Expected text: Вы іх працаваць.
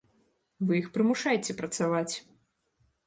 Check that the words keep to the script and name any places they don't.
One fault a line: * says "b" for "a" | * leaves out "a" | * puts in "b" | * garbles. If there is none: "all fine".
* puts in "прымушайце"